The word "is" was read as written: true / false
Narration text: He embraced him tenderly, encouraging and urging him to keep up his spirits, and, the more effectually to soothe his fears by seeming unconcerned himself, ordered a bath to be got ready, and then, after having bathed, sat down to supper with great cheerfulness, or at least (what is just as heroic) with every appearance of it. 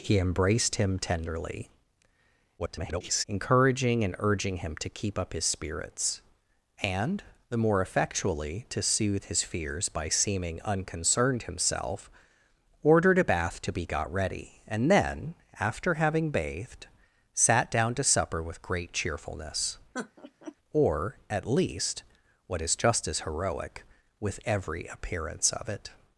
true